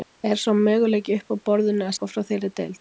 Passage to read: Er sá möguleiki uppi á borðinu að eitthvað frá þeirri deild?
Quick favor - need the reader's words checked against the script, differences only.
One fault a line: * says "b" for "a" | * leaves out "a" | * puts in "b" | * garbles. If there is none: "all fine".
all fine